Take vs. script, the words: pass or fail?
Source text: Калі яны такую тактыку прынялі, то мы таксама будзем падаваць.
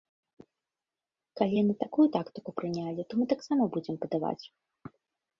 pass